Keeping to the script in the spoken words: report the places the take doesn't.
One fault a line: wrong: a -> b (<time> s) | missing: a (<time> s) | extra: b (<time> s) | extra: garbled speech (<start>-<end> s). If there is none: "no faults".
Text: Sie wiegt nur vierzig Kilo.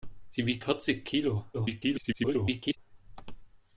missing: nur (0.7 s)
extra: garbled speech (1.5-2.8 s)